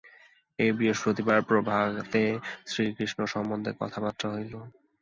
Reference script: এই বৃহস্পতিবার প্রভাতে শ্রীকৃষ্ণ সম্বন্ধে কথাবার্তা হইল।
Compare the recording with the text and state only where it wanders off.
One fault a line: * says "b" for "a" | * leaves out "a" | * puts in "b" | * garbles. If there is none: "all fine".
all fine